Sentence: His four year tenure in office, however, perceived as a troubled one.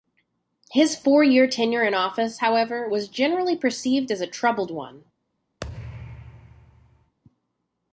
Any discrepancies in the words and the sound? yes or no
yes